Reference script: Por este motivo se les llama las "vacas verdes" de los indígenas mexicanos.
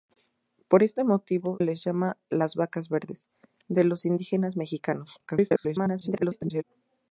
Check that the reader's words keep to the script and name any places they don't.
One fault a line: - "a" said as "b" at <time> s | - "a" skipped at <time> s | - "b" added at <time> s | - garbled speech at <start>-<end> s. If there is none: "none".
- "se" skipped at 1.6 s
- garbled speech at 5.3-6.6 s